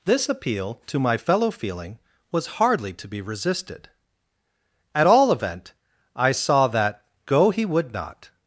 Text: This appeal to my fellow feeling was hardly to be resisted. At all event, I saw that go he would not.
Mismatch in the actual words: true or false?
false